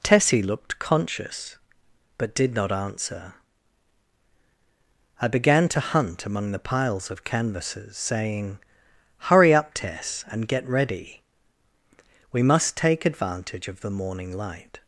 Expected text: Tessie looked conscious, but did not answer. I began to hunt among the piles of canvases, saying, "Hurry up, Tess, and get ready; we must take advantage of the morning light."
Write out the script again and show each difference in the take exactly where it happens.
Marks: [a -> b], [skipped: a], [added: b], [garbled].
Tessie looked conscious, but did not answer. I began to hunt among the piles of canvases, saying, "Hurry up, Tess, and get ready; we must take advantage of the morning light."